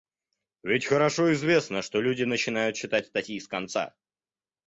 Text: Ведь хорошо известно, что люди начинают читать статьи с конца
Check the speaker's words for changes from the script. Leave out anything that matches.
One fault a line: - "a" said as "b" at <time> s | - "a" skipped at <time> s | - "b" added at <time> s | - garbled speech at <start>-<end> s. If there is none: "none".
none